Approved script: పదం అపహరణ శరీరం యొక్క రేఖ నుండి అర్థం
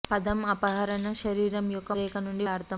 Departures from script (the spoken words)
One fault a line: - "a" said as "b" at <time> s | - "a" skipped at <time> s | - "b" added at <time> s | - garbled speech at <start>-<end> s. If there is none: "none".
none